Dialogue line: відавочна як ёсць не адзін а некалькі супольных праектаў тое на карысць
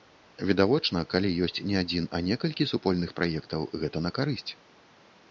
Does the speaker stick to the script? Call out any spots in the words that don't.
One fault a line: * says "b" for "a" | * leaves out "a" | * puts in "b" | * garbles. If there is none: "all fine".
* says "калі" for "як"
* says "гэта" for "тое"